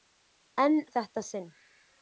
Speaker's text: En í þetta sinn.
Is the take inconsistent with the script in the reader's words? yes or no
no